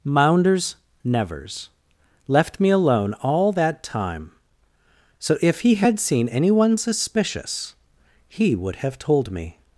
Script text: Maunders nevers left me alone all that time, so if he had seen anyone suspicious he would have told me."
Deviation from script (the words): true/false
false